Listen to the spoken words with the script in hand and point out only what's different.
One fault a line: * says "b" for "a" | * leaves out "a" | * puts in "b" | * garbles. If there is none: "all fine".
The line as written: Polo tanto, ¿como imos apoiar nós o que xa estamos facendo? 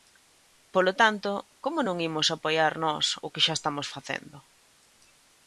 * puts in "non"